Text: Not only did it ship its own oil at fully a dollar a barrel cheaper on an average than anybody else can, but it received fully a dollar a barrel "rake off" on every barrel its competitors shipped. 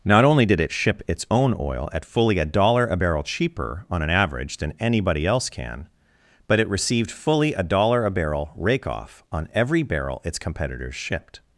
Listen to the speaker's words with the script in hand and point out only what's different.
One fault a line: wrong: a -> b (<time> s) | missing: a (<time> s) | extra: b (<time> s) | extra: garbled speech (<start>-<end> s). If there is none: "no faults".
no faults